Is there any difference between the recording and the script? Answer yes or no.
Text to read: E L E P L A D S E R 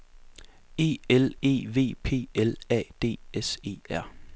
yes